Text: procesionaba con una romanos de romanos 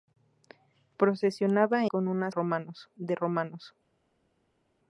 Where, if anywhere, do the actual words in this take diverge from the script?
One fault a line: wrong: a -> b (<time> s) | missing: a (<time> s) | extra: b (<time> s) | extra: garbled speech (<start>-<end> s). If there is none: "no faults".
no faults